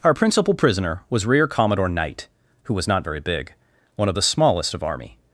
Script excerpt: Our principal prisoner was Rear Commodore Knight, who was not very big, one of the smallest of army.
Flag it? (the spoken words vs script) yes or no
no